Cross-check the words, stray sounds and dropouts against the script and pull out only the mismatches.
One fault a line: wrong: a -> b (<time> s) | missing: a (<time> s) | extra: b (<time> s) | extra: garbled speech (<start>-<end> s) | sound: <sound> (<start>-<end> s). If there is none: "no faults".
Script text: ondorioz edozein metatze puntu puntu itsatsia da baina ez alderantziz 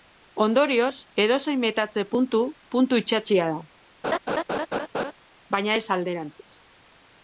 sound: laugh (4.0-5.1 s)